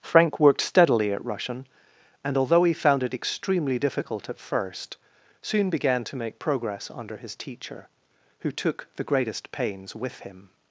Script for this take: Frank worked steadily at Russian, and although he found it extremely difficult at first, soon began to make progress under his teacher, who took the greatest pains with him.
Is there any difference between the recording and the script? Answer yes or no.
no